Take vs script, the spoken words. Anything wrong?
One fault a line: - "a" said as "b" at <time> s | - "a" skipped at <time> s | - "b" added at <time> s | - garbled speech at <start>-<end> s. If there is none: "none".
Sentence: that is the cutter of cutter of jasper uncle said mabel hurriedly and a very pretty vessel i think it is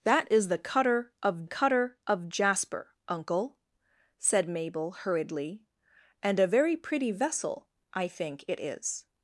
none